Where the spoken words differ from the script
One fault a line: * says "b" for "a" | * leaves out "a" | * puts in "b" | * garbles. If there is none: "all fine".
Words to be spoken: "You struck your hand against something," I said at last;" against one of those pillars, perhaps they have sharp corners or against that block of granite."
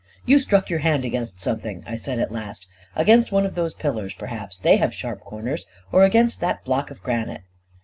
all fine